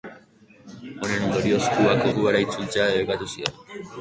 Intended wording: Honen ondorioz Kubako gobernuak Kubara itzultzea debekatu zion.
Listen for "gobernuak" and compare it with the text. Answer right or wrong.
wrong